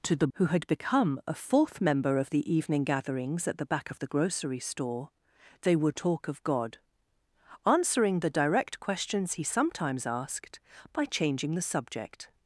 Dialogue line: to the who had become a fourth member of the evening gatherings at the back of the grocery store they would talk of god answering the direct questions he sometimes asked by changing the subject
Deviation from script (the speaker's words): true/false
false